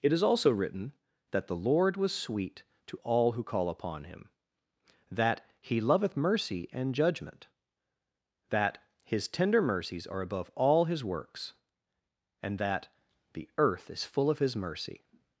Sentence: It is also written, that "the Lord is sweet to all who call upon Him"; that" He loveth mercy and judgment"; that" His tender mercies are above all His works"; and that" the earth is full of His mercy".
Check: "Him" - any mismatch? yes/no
no